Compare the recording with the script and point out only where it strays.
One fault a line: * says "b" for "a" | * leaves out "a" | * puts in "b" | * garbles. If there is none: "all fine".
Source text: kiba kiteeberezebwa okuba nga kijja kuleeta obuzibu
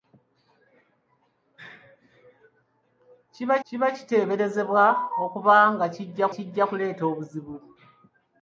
* puts in "kiba"
* puts in "kijja"